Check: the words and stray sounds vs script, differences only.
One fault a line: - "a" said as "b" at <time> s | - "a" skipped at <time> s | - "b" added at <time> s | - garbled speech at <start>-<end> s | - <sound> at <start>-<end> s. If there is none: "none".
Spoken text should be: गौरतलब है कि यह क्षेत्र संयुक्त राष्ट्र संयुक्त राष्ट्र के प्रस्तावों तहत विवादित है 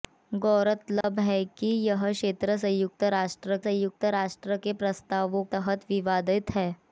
- dropout at 1.0-1.0 s